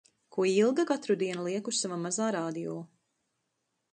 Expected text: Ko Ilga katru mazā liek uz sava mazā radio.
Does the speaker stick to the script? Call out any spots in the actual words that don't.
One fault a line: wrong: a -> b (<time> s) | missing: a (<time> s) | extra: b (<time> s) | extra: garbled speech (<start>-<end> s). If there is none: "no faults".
wrong: mazā -> dienu (1.2 s)